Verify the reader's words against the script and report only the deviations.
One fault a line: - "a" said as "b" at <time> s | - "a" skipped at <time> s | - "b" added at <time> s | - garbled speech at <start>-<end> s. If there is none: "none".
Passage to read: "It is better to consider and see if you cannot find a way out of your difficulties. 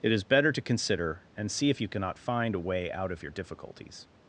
none